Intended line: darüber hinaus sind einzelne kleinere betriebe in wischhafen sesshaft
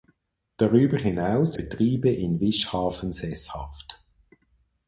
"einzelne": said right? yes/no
no